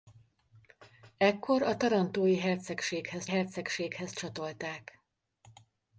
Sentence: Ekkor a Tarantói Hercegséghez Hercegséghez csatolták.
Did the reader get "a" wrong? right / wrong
right